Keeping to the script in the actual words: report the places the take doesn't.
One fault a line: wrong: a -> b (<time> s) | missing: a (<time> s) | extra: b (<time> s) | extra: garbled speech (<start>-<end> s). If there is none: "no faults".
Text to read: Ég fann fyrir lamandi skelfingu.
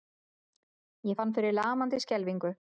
no faults